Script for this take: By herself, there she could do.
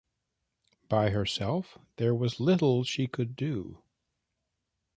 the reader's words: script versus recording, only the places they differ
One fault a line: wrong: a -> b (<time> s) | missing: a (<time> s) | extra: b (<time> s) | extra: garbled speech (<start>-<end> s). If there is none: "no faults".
extra: was little (2.1 s)